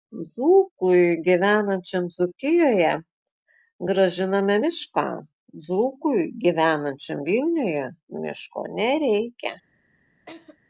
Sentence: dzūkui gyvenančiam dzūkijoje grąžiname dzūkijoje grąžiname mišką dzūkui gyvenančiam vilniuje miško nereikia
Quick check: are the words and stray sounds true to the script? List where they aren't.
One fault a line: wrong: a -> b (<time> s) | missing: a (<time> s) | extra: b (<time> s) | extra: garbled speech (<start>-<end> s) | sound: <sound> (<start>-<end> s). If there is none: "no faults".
missing: dzūkijoje grąžiname (4.6 s)
sound: laugh (10.3-10.6 s)